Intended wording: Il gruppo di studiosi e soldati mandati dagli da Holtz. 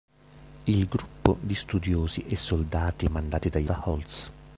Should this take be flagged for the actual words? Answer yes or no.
no